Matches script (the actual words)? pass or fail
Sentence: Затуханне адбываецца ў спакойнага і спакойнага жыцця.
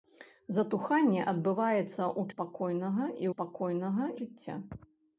pass